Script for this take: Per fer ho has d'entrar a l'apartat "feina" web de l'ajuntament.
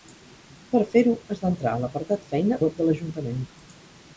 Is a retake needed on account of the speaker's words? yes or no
no